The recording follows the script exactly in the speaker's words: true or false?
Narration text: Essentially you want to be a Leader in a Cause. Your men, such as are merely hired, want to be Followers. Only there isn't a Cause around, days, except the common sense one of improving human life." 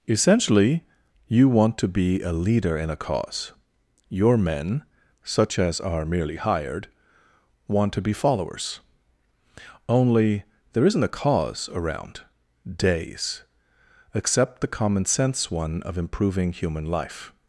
true